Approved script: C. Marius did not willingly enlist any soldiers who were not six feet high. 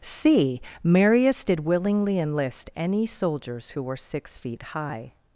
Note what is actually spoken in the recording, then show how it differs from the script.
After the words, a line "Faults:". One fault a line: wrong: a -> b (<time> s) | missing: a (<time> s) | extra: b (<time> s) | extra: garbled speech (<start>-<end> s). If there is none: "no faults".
C. Marius did willingly enlist any soldiers who were six feet high.
Faults:
missing: not (1.6 s)
missing: not (4.0 s)